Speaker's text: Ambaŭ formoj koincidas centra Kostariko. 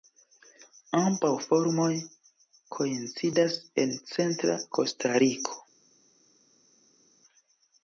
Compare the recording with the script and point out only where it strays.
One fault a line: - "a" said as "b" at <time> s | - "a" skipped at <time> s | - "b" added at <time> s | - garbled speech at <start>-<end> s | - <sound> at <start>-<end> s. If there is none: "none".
- "en" added at 3.8 s